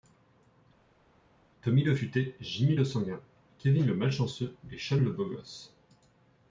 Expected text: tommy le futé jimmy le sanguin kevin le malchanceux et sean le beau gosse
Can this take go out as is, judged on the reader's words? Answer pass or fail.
pass